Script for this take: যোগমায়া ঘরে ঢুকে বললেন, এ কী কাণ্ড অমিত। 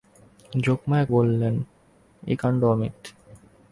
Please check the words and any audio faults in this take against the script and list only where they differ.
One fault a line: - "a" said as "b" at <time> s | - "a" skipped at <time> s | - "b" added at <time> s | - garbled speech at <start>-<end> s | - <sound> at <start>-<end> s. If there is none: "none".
- "ঘরে ঢুকে" skipped at 1.1 s
- "কী" skipped at 2.3 s